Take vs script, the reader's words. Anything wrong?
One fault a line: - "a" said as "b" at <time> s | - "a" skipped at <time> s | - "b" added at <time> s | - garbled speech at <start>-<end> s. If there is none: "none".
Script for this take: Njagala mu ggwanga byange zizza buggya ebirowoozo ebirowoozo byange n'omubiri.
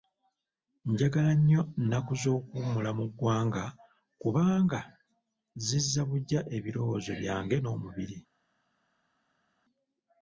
- "nnyo nnaku z'okuwummula" added at 1.4 s
- "byange" said as "kubanga" at 4.2 s
- "ebirowoozo" skipped at 7.1 s